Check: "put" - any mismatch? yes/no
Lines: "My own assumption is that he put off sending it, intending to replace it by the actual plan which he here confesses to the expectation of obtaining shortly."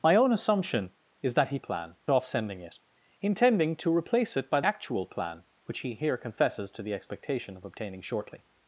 yes